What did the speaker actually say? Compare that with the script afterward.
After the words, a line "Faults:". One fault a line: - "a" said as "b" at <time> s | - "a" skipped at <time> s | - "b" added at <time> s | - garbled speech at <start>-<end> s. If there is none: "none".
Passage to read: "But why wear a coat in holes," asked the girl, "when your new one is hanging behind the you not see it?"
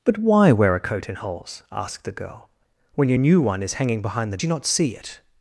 "But why wear a coat in holes," asked the girl, "when your new one is hanging behind the you not see it?"
Faults:
none